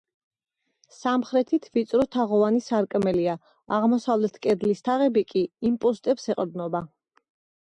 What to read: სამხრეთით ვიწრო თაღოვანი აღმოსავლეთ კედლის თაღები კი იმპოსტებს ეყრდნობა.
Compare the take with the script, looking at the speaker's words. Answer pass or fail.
fail